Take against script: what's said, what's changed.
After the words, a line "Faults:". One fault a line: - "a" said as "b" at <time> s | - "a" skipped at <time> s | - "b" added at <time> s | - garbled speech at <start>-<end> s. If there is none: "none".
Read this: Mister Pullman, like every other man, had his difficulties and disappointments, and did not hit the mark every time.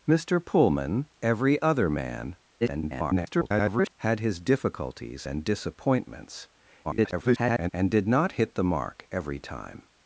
Mister Pullman, every other man, [garbled] had his difficulties and disappointments, [garbled] and did not hit the mark every time.
Faults:
- "like" skipped at 1.1 s
- garbled speech at 2.6-3.9 s
- garbled speech at 6.8-7.7 s